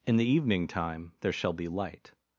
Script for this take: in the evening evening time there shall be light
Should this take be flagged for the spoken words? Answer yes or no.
yes